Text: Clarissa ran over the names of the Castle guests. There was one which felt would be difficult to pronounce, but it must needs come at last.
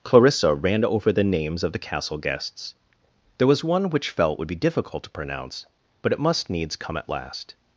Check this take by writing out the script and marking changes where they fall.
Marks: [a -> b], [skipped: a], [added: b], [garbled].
Clarissa ran over the names of the Castle guests. There was one which felt would be difficult to pronounce, but it must needs come at last.